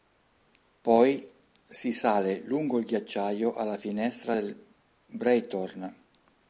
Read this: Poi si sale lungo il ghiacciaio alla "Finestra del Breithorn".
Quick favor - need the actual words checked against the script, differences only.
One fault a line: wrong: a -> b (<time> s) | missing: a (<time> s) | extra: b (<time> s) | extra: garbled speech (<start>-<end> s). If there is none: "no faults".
no faults